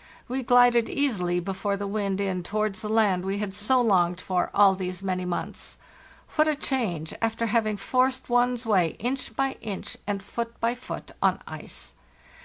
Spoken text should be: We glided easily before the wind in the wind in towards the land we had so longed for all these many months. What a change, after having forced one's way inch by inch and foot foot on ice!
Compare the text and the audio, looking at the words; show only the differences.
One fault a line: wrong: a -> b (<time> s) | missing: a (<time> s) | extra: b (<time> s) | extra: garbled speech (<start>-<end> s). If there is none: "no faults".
missing: the wind in (2.4 s)
extra: by (10.6 s)